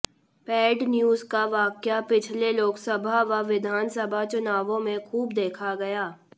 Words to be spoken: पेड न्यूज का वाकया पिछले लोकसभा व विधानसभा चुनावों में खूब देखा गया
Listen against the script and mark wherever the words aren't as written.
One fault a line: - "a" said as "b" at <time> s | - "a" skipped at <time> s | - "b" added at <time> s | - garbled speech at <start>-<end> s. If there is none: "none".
none